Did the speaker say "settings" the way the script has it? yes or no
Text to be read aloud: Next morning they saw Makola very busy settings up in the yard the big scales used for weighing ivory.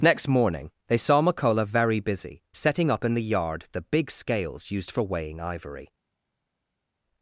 no